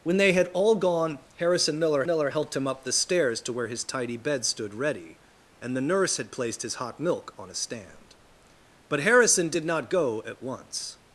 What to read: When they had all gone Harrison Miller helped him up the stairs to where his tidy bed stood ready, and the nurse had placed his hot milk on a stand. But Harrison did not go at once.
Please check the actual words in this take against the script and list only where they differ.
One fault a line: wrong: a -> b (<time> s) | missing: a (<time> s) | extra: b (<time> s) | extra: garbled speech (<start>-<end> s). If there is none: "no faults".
extra: Miller (2.0 s)